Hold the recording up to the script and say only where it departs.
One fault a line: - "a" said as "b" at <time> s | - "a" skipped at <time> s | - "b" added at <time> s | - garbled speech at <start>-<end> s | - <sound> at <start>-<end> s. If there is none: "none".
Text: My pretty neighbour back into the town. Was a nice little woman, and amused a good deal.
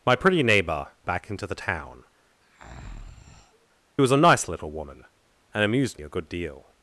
- breath at 2.4-3.7 s